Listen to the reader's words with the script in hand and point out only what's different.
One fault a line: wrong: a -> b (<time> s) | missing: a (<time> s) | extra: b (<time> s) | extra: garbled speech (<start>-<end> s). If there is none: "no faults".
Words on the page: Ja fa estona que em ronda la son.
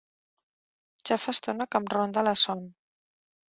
no faults